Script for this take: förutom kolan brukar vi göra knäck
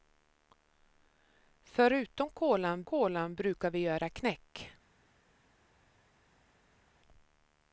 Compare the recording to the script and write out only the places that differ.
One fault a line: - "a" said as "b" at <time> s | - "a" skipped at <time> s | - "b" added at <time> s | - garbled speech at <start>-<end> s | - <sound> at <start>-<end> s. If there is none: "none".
- "kolan" added at 2.8 s